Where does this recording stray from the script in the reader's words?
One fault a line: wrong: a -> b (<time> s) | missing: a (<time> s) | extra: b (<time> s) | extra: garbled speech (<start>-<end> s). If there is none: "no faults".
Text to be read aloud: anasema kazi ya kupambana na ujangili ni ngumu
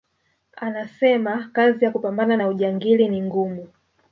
no faults